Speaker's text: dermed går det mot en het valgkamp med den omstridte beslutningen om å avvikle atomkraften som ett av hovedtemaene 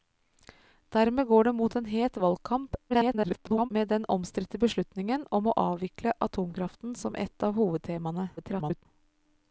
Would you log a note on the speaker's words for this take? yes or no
yes